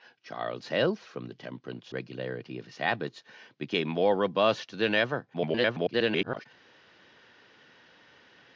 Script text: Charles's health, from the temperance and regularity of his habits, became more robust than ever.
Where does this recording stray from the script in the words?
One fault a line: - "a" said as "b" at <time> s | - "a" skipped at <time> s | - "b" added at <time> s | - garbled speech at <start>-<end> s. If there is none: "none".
- "and" skipped at 1.9 s
- garbled speech at 5.3-6.5 s